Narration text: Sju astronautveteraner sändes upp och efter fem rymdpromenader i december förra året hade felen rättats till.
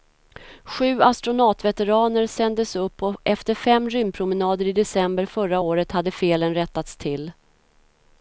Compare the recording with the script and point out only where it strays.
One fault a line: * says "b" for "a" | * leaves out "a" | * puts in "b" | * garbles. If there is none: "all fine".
all fine